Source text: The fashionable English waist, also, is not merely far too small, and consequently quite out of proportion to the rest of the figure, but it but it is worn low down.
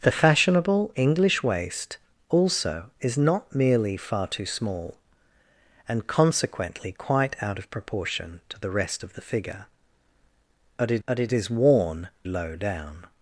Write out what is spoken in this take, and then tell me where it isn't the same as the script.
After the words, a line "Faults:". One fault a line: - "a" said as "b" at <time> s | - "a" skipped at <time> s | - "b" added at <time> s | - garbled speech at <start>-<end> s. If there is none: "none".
The fashionable English waist, also, is not merely far too small, and consequently quite out of proportion to the rest of the figure, but it but it is worn low down.
Faults:
none